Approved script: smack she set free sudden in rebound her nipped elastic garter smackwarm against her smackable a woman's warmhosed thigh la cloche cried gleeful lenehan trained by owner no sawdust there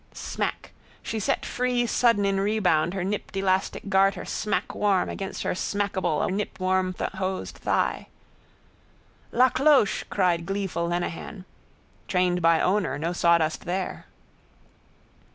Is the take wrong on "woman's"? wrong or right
wrong